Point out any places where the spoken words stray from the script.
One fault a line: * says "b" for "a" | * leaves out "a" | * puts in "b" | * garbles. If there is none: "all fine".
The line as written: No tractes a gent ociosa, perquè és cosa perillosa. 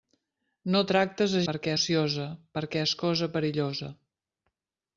* says "perquè" for "gent"